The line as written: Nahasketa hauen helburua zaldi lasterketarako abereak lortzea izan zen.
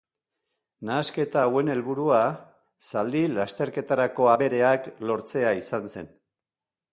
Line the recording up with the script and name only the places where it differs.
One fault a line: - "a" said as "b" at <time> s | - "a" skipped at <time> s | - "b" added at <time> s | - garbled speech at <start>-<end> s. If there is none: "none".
none